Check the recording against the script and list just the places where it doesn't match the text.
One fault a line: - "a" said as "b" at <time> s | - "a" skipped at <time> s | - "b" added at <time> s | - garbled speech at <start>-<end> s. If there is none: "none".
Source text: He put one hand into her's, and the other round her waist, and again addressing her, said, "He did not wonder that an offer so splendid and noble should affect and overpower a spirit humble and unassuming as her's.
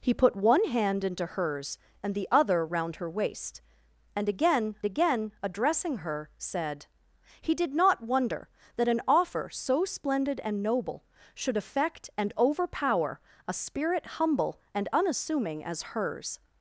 - "again" added at 4.8 s